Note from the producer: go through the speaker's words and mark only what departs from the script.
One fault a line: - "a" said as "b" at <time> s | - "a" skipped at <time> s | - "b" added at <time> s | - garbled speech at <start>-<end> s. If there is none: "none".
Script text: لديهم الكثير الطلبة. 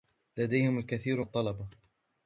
none